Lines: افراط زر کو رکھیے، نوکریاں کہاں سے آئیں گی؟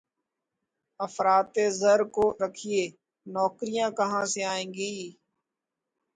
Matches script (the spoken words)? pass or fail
pass